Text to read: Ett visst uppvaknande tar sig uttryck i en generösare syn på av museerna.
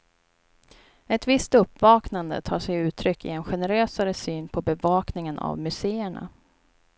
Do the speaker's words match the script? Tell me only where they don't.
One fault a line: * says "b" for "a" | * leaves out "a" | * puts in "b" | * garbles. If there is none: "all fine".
* puts in "bevakningen"